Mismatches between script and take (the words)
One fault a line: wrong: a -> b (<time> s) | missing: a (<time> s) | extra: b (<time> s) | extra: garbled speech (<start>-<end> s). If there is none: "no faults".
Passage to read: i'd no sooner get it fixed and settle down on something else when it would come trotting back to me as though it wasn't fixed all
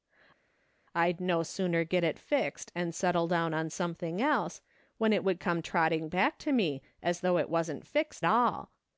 no faults